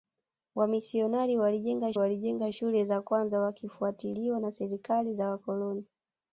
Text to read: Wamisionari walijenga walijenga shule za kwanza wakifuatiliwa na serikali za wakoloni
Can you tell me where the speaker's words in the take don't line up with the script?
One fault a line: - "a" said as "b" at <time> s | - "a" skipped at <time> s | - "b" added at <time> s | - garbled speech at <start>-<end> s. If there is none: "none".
none